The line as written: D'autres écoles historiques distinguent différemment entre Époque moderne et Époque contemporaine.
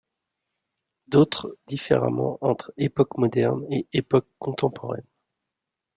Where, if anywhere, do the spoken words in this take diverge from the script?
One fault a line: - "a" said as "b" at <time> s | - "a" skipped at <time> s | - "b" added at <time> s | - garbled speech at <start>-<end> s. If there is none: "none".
- "écoles historiques distinguent" skipped at 1.6 s